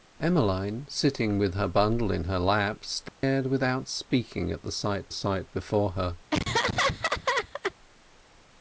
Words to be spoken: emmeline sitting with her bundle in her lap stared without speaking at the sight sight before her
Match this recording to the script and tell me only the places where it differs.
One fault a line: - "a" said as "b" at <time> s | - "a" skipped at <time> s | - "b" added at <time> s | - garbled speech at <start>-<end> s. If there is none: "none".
none